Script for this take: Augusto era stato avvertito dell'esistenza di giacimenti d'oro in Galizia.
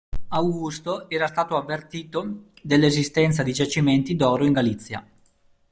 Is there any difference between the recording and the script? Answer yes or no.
no